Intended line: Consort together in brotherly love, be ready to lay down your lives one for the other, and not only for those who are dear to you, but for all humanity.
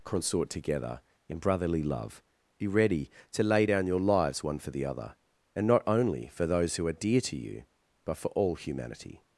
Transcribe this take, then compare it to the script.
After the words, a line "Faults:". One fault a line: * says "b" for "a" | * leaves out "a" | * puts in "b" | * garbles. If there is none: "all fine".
Consort together in brotherly love, be ready to lay down your lives one for the other, and not only for those who are dear to you, but for all humanity.
Faults:
all fine